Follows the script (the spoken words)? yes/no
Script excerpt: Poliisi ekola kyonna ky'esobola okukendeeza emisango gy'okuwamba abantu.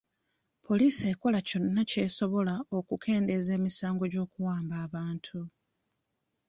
yes